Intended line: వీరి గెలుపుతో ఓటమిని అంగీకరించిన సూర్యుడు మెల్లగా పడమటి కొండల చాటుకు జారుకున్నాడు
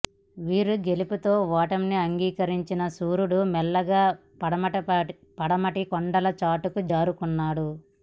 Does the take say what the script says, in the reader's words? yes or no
yes